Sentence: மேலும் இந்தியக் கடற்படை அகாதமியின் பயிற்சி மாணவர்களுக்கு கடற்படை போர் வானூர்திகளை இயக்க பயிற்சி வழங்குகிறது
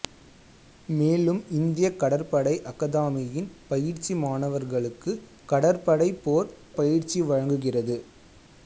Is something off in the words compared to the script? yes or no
yes